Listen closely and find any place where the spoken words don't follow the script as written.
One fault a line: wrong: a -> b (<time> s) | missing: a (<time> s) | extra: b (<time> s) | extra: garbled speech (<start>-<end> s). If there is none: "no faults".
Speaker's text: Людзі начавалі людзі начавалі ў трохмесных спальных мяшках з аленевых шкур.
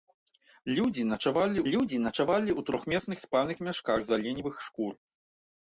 no faults